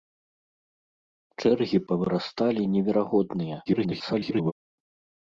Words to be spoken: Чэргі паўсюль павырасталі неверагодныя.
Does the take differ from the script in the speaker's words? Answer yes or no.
yes